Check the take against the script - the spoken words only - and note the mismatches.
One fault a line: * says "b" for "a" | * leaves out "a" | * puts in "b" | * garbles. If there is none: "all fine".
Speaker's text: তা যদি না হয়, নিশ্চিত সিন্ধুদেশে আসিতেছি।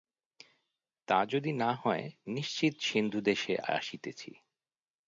all fine